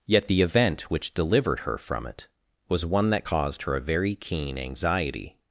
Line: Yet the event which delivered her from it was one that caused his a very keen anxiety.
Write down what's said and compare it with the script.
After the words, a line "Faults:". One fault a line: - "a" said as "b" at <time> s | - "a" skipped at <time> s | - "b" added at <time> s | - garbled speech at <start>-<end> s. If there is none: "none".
Yet the event which delivered her from it was one that caused her a very keen anxiety.
Faults:
- "his" said as "her" at 3.6 s